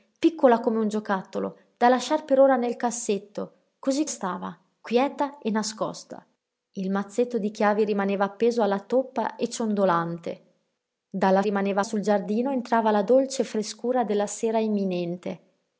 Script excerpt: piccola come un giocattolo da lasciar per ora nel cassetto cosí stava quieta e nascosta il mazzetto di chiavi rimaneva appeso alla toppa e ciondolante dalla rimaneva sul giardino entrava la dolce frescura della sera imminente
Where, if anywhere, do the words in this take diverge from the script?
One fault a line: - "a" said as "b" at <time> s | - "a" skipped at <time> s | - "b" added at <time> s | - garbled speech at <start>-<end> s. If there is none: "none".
none